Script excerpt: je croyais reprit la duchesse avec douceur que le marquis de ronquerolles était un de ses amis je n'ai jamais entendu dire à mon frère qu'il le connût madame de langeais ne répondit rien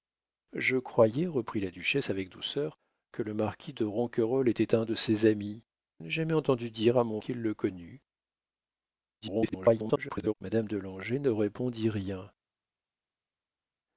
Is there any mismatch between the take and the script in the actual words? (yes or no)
yes